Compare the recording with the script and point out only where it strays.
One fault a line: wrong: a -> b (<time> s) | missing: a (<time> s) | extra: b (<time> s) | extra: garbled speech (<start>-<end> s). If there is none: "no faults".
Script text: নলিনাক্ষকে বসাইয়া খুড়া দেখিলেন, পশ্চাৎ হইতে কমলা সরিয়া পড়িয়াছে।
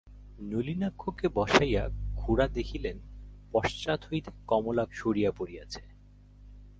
no faults